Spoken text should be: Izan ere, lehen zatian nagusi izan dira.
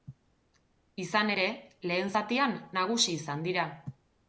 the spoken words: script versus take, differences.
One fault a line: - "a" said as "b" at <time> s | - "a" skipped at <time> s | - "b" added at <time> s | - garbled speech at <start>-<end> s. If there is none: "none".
none